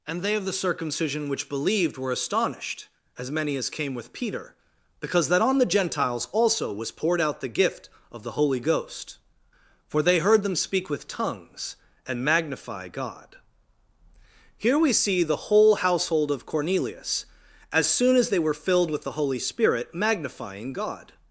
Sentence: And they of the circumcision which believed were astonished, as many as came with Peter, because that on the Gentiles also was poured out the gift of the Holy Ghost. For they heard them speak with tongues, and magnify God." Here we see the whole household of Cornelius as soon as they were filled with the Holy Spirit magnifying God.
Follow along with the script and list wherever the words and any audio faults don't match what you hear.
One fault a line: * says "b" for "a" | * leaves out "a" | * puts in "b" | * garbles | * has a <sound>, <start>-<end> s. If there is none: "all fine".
all fine